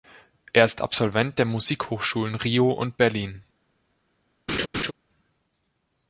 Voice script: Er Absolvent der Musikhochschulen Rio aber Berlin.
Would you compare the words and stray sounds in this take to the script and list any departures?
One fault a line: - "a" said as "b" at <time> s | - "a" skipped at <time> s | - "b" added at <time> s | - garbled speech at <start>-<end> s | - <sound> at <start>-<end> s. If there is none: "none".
- "ist" added at 0.7 s
- "aber" said as "und" at 2.7 s
- laugh at 4.5-4.9 s